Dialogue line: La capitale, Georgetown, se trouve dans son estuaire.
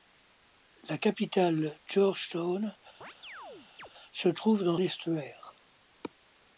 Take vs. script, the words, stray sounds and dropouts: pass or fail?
fail